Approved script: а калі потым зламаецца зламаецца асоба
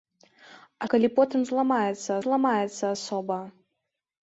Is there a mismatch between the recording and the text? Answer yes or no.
no